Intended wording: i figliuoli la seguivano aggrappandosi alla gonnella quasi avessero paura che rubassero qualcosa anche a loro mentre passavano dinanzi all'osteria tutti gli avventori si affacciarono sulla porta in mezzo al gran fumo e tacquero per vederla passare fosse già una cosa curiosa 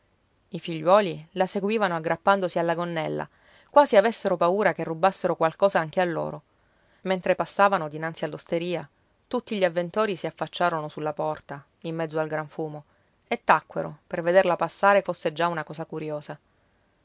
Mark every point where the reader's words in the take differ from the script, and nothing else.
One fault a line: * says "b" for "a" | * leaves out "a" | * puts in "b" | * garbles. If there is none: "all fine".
all fine